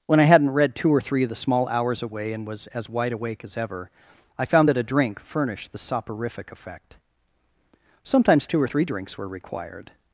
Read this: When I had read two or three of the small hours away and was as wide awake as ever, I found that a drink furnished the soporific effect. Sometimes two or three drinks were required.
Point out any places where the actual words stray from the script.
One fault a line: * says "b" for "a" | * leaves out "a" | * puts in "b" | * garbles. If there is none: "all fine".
* says "hadn't" for "had"